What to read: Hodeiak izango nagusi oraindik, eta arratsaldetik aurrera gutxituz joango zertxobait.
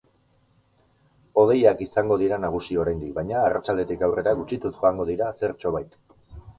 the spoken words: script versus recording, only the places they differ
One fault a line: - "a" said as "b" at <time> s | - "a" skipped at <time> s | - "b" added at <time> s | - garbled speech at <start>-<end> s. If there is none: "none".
- "dira" added at 2.2 s
- "eta" said as "baina" at 3.2 s
- "dira" added at 5.1 s